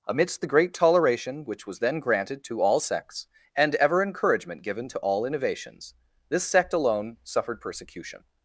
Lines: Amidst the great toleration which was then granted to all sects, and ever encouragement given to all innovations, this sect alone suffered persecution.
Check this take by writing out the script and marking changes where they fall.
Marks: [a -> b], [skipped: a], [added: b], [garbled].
Amidst the great toleration which was then granted to all sects, and ever encouragement given to all innovations, this sect alone suffered persecution.